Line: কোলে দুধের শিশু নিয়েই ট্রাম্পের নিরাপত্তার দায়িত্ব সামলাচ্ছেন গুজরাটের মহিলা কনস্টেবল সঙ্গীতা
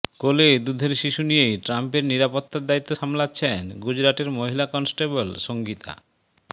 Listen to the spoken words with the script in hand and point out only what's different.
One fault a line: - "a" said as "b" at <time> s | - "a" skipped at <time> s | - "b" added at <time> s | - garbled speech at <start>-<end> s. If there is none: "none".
none